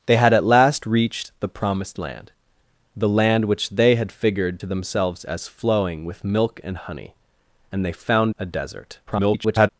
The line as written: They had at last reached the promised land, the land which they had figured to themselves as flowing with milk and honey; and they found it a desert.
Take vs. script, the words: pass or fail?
fail